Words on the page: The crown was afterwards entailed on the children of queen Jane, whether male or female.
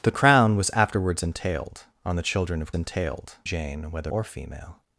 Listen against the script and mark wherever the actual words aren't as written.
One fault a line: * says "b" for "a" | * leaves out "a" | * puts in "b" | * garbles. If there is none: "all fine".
* says "entailed" for "queen"
* leaves out "male"